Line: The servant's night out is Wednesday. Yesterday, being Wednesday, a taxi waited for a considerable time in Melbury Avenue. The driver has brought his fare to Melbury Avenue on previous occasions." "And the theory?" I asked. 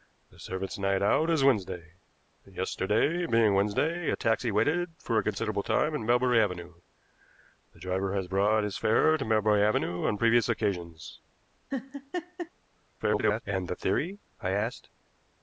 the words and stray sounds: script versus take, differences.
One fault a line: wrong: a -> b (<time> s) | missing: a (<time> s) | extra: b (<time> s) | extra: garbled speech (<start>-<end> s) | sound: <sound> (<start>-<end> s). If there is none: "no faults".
sound: laugh (11.7-12.5 s)
extra: garbled speech (13.0-13.4 s)